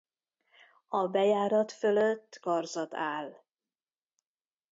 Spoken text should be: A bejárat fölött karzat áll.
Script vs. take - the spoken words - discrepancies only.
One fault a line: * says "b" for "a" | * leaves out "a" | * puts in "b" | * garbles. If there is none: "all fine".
all fine